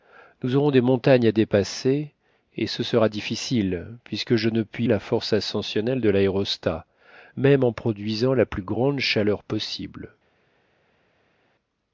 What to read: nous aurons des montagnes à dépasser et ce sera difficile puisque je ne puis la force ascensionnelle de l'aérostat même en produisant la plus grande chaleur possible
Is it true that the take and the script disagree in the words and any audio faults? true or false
false